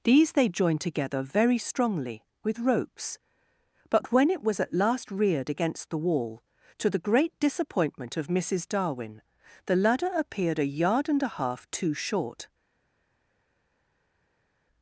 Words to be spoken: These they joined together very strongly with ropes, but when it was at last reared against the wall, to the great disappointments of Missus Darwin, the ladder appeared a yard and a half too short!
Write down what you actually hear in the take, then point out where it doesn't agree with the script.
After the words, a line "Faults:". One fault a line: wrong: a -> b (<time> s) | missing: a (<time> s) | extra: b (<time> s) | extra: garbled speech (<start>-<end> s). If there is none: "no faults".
These they joined together very strongly with ropes, but when it was at last reared against the wall, to the great disappointment of Missus Darwin, the ladder appeared a yard and a half too short!
Faults:
wrong: disappointments -> disappointment (7.4 s)